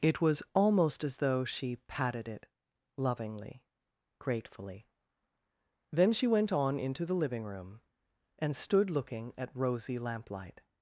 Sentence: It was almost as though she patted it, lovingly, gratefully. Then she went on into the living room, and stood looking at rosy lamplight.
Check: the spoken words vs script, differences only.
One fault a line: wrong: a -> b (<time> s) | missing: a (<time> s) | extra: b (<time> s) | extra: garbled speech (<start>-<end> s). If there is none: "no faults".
no faults